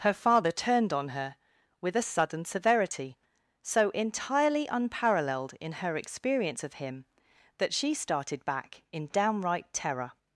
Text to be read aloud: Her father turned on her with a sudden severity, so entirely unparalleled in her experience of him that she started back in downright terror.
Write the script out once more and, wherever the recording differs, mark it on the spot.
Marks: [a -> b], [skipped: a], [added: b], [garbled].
Her father turned on her with a sudden severity, so entirely unparalleled in her experience of him that she started back in downright terror.